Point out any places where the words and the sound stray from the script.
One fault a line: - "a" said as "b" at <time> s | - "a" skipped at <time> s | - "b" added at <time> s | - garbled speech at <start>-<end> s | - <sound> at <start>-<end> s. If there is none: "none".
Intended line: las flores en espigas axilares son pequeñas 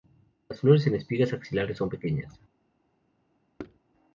- thud at 3.6-3.8 s